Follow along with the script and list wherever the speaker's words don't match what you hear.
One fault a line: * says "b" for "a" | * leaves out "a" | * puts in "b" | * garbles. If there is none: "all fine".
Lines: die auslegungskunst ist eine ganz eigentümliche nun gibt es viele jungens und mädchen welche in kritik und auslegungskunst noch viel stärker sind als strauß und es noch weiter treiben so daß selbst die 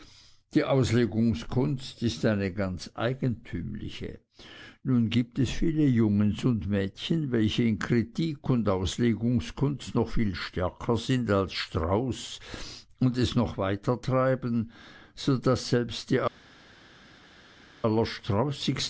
all fine